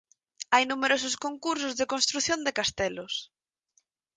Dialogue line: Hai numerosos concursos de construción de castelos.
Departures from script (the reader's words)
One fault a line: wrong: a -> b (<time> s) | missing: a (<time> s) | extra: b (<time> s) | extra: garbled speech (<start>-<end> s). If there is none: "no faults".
no faults